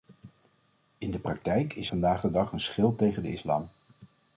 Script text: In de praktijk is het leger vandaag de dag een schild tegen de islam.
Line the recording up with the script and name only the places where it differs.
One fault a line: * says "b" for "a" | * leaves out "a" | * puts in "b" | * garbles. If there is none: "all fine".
* leaves out "het leger"